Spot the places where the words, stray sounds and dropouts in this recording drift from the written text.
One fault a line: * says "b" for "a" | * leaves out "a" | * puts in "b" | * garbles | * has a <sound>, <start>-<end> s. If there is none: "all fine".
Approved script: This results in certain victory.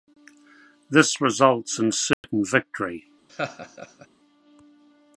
* has a dropout, 2.1-2.2 s
* has a laugh, 3.3-4.1 s